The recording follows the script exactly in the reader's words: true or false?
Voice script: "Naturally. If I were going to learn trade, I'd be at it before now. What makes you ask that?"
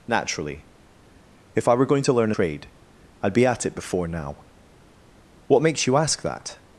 true